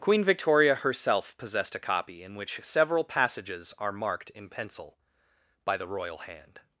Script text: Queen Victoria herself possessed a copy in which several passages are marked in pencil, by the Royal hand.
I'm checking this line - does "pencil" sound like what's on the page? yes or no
yes